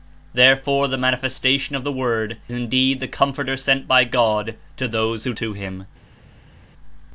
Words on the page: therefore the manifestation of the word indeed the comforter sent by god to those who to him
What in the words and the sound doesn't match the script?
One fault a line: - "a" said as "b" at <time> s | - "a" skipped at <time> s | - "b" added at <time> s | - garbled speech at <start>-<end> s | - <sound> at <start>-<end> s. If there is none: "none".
none